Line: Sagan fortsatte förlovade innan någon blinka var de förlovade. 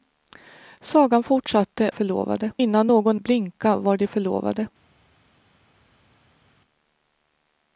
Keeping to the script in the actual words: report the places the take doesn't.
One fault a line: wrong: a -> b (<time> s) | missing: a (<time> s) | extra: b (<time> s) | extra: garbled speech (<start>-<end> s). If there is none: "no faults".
no faults